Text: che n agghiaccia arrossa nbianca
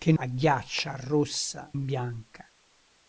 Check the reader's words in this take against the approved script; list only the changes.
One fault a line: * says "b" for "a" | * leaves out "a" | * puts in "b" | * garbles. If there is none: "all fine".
all fine